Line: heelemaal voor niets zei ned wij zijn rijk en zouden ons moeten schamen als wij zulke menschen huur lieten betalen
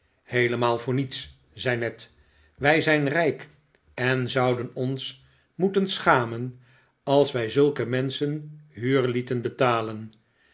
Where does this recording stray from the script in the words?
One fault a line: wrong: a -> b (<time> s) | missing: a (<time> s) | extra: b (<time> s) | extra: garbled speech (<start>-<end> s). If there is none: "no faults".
no faults